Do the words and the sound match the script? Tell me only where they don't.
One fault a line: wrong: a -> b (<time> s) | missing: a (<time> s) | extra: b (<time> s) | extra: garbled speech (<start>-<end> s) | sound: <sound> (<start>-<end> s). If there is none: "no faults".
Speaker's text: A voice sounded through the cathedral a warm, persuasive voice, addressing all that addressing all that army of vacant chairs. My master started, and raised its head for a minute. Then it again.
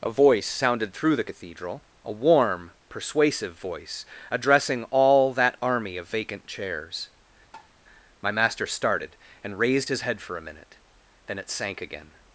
missing: addressing all that (5.6 s)
sound: tap (7.5-7.7 s)
wrong: its -> his (9.9 s)
extra: sank (11.5 s)